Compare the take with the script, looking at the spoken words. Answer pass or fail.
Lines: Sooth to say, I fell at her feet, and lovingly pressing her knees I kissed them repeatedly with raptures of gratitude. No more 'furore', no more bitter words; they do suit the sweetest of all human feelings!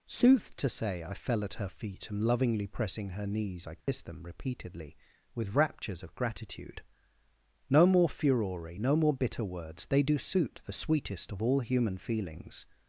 pass